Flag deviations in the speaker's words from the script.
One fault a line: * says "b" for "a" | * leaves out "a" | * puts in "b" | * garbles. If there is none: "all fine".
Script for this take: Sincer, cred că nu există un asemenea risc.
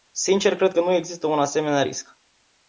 all fine